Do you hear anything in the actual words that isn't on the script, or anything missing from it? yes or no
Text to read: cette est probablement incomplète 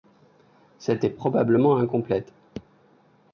no